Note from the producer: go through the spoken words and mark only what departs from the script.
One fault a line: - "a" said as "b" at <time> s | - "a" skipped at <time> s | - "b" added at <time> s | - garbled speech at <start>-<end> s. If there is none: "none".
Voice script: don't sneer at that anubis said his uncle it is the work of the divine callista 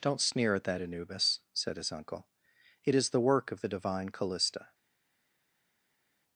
none